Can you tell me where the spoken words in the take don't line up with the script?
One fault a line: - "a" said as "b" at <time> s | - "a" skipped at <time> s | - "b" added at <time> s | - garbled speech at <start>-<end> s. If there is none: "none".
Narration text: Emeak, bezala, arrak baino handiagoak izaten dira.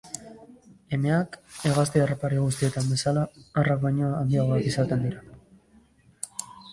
- "hegazti harrapari guztietan" added at 1.7 s